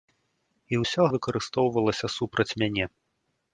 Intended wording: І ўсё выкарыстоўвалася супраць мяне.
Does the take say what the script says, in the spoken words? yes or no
yes